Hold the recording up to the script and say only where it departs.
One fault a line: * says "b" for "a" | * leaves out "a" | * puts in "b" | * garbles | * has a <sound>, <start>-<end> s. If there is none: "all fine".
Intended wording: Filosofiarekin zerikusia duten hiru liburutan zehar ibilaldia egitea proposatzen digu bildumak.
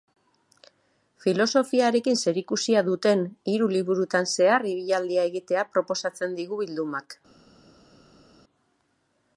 all fine